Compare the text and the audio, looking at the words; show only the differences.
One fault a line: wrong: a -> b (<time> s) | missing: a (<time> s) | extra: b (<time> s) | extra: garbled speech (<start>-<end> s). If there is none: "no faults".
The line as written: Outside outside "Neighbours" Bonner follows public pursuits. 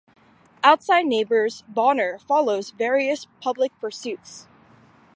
missing: outside (1.1 s)
extra: various (2.7 s)